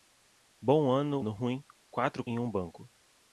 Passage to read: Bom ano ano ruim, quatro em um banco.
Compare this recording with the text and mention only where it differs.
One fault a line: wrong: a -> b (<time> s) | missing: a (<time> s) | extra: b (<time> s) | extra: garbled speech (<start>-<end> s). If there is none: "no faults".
no faults